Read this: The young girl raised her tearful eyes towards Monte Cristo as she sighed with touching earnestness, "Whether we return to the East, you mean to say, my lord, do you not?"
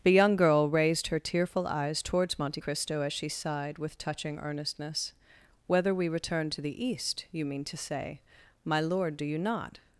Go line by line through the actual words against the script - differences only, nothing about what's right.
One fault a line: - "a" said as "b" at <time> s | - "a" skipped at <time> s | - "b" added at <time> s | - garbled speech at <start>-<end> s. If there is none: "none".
none